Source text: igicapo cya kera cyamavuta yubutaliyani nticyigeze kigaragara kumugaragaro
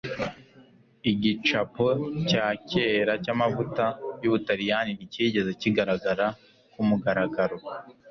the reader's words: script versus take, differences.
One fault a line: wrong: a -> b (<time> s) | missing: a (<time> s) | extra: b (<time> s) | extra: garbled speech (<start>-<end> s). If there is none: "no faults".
no faults